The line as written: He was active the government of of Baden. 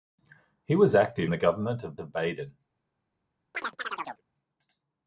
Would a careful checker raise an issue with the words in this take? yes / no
no